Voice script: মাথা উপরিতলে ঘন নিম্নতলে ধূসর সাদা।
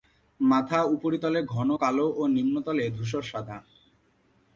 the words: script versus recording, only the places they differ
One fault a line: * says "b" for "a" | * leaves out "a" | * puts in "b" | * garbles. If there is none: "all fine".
* puts in "কালো ও"